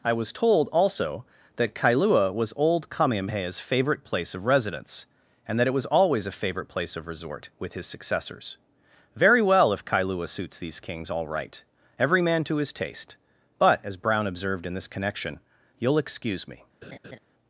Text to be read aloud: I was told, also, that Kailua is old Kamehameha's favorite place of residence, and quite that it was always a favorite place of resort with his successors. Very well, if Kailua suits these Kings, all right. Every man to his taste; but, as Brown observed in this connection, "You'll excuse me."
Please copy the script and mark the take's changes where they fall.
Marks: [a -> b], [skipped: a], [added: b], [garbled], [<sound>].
I was told, also, that Kailua [is -> was] old Kamehameha's favorite place of residence, and [skipped: quite] that it was always a favorite place of resort with his successors. Very well, if Kailua suits these Kings, all right. Every man to his taste; but, as Brown observed in this connection, "You'll excuse me." [laugh]